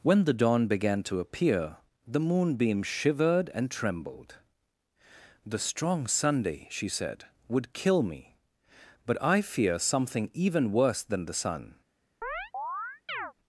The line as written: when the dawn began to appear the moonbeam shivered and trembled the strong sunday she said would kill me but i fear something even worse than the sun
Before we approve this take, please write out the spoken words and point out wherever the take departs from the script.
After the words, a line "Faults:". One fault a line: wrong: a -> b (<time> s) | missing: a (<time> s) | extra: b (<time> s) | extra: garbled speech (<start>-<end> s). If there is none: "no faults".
when the dawn began to appear the moonbeam shivered and trembled the strong sunday she said would kill me but i fear something even worse than the sun
Faults:
no faults